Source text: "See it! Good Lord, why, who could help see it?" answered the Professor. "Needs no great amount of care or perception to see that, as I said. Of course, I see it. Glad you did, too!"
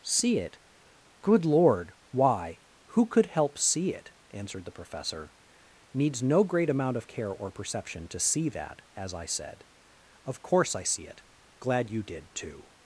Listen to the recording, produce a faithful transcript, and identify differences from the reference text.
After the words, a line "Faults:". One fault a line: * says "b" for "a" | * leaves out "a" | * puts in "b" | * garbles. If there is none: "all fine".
"See it! Good Lord, why, who could help see it?" answered the Professor. "Needs no great amount of care or perception to see that, as I said. Of course, I see it. Glad you did, too!"
Faults:
all fine